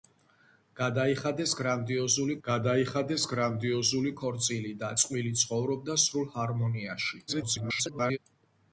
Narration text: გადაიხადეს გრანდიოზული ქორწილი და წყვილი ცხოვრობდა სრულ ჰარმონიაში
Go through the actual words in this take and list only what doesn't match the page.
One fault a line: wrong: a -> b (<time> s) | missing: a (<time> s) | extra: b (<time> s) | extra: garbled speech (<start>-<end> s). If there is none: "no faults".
extra: გადაიხადეს გრანდიოზული (2.4 s)
extra: garbled speech (7.3-8.2 s)